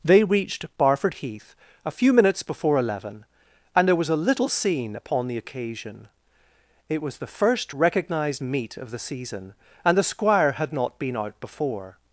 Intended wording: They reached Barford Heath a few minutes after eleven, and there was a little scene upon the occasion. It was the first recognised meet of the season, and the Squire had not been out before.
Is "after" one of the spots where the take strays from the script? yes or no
yes